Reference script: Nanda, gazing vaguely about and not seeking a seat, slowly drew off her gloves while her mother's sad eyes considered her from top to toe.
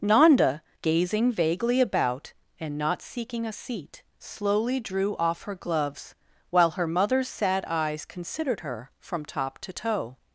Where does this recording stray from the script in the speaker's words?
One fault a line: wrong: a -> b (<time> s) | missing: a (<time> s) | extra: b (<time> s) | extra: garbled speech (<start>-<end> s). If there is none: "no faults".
no faults